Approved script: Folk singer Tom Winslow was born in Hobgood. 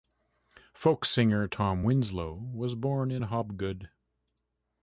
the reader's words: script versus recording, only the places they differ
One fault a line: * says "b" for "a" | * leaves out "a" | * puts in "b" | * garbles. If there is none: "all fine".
all fine